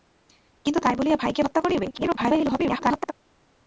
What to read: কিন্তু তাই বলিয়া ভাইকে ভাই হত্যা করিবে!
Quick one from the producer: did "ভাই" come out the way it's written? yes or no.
no